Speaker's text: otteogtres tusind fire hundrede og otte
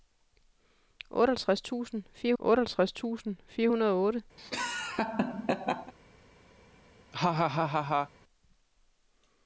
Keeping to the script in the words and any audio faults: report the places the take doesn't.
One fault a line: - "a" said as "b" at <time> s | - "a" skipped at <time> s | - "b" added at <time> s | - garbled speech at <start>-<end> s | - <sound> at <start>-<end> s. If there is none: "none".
- "otteogtres tusind fire" added at 2.4 s
- laugh at 4.4-5.9 s
- laugh at 7.1-8.1 s